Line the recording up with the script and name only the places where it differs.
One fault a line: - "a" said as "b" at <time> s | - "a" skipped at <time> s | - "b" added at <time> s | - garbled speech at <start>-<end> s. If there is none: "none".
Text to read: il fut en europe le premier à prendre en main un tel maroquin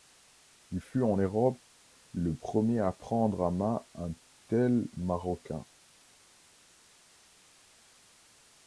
none